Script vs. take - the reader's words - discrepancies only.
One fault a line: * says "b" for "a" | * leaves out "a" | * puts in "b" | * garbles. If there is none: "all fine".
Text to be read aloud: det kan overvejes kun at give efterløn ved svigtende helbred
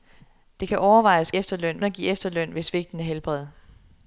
* says "efterløn" for "kun"